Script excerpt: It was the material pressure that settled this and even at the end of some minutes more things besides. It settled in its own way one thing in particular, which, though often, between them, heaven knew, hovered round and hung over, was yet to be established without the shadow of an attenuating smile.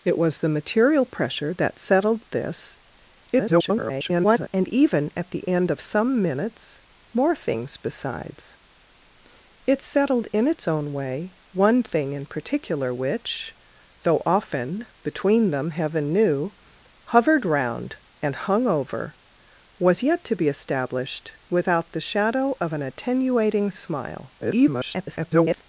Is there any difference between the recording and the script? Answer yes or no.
yes